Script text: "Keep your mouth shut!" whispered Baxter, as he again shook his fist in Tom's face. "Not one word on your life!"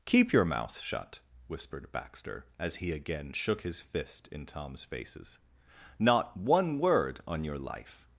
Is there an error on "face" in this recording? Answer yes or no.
yes